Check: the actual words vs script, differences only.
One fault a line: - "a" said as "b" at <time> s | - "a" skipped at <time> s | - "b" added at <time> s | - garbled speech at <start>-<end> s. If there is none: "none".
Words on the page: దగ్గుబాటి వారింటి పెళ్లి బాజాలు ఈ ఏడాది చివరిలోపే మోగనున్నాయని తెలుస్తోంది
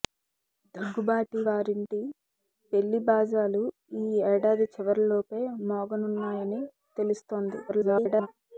- garbled speech at 7.7-8.3 s